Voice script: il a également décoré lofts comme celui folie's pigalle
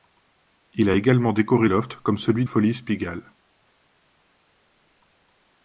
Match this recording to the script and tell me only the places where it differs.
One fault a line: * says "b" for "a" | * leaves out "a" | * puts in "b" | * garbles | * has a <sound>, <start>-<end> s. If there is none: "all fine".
all fine